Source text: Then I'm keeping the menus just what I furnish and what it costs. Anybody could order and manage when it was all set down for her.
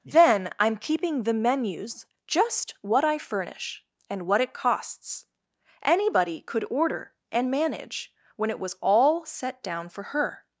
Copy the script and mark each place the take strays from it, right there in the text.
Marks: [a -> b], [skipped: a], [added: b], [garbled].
Then I'm keeping the menus just what I furnish and what it costs. Anybody could order and manage when it was all set down for her.